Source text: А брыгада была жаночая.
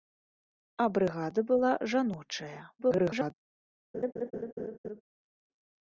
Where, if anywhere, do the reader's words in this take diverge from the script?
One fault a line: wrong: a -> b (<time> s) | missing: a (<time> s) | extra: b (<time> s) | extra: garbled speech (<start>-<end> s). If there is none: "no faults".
extra: garbled speech (2.8-3.3 s)